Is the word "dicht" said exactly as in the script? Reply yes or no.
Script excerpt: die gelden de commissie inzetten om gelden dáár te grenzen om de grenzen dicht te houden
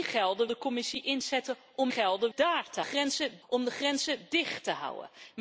yes